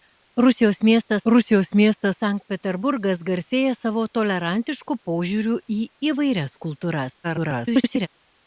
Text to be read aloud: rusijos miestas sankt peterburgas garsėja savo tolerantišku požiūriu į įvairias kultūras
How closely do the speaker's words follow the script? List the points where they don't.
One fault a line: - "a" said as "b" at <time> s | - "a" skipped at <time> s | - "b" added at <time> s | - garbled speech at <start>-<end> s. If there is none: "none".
- "rusijos miestas" added at 1.3 s
- garbled speech at 7.2-8.1 s